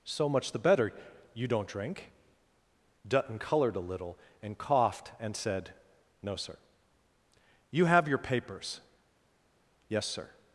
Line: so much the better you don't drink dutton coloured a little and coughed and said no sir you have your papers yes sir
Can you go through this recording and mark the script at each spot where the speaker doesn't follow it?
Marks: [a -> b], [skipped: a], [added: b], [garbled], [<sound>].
so much the better you don't drink dutton coloured a little and coughed and said no sir you have your papers yes sir